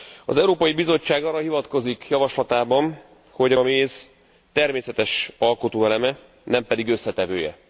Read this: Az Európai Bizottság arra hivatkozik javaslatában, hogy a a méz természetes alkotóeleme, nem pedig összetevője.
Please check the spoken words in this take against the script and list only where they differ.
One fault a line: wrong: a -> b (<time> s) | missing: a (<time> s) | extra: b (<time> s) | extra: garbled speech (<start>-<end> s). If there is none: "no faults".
no faults